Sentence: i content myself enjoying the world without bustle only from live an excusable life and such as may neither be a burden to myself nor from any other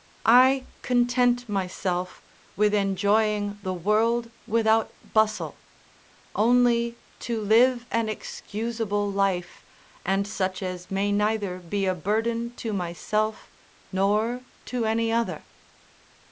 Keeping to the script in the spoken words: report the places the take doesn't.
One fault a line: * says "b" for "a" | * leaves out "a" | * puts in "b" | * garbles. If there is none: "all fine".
* puts in "with"
* says "to" for "from"
* says "to" for "from"